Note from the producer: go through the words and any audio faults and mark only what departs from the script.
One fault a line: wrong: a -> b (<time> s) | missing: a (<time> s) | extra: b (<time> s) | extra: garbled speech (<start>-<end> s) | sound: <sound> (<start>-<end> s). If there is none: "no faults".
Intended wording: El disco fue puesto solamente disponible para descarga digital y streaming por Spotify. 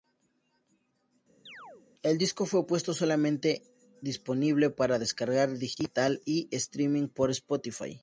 sound: chirp (1.5-1.9 s)